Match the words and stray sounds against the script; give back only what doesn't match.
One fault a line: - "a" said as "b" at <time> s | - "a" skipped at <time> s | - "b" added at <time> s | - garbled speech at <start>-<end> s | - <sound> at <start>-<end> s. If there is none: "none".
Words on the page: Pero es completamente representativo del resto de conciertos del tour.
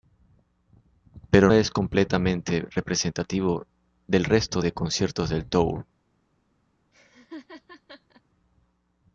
- laugh at 6.9-8.2 s